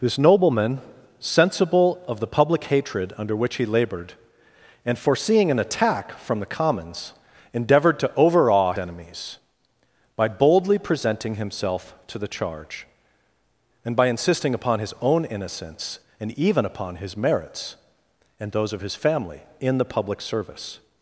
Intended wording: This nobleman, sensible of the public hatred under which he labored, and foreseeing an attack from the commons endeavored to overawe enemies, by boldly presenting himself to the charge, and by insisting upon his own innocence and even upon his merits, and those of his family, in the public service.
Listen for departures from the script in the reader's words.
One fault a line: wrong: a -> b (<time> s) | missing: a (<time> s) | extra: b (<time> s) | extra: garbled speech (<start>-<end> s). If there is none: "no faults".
no faults